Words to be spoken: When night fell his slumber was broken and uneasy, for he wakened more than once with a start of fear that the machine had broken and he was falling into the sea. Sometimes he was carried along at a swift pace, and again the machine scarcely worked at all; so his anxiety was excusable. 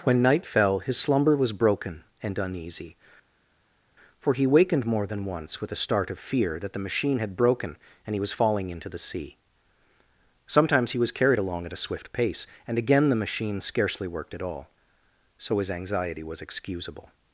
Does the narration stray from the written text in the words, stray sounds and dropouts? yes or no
no